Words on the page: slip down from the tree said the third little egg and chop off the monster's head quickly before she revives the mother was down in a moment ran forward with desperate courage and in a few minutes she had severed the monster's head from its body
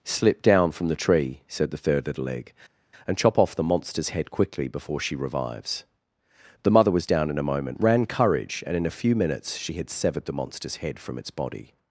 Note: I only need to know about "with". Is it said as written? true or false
false